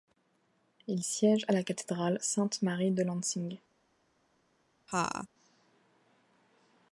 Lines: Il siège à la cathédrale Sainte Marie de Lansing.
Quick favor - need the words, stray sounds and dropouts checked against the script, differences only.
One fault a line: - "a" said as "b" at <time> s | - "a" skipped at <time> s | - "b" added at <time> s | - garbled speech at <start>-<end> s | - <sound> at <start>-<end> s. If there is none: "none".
- laugh at 4.9-5.3 s